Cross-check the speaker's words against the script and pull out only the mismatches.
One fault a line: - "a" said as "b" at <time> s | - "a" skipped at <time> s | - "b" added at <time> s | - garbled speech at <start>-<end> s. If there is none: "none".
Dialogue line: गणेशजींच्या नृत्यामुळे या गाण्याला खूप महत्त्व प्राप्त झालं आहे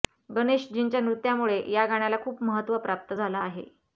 none